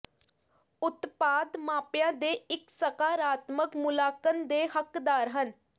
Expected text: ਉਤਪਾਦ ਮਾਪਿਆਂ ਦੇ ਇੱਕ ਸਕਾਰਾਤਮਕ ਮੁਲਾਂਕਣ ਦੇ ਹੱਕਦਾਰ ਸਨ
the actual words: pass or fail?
fail